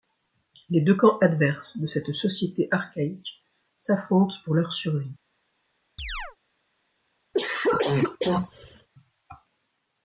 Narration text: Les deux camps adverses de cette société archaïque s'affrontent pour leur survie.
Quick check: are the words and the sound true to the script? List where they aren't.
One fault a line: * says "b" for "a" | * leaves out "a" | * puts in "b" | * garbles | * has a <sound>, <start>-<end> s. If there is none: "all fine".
* has a chirp, 6.0-6.4 s
* has a cough, 7.3-8.9 s